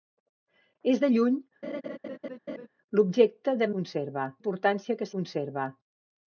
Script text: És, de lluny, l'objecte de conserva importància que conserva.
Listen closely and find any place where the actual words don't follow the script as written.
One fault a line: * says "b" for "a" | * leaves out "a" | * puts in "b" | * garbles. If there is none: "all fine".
all fine